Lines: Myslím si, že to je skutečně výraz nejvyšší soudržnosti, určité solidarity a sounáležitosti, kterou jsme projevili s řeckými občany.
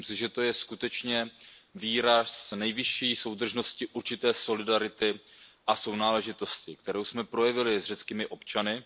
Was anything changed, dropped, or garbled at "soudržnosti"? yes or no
no